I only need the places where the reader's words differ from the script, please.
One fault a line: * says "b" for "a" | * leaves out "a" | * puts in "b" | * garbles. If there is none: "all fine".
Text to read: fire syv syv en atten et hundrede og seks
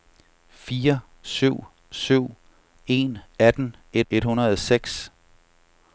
* puts in "et"